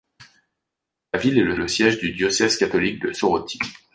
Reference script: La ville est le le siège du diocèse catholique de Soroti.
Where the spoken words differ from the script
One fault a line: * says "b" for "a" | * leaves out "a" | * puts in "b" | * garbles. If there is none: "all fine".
all fine